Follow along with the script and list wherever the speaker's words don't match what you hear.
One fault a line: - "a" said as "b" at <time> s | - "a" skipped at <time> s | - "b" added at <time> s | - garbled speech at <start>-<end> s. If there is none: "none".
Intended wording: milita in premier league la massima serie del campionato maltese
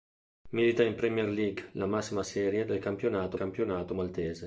- "campionato" added at 3.3 s